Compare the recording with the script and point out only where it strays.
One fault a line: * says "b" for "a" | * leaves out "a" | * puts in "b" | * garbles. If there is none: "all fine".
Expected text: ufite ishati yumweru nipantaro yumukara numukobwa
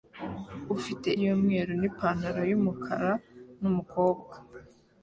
* leaves out "ishati"